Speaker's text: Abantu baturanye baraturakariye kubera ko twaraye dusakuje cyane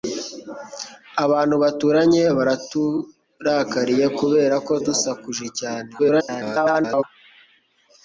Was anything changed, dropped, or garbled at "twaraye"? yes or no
yes